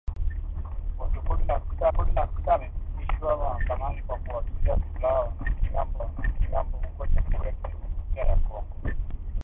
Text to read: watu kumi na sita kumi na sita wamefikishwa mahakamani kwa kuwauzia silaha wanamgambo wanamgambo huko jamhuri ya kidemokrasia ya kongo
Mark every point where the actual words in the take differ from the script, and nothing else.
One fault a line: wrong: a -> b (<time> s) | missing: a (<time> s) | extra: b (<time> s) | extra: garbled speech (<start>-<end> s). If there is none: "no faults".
no faults